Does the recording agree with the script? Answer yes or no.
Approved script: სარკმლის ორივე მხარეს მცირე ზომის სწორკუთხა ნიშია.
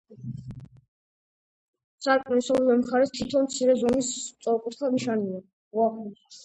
no